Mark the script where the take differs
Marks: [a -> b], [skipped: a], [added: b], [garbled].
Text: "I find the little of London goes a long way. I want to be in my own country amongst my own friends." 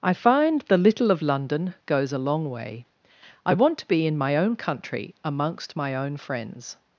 "I find the little of London goes a long way. I want to be in my own country amongst my own friends."